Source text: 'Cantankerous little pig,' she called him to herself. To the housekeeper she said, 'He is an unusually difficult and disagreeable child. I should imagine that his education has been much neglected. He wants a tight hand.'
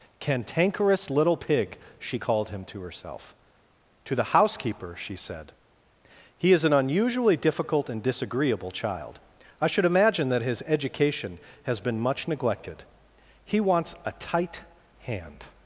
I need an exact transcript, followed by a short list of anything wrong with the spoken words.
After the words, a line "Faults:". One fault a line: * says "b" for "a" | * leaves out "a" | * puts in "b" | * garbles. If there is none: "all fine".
'Cantankerous little pig,' she called him to herself. To the housekeeper she said, 'He is an unusually difficult and disagreeable child. I should imagine that his education has been much neglected. He wants a tight hand.'
Faults:
all fine